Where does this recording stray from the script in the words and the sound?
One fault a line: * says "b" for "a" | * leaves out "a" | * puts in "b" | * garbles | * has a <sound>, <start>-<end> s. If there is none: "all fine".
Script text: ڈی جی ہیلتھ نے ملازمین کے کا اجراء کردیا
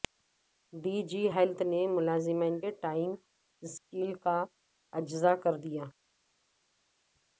* puts in "ٹائم سکیل"